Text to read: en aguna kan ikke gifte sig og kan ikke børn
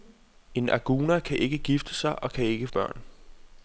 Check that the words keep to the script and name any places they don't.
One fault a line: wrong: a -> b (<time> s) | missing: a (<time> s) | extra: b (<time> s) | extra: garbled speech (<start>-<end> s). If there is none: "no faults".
no faults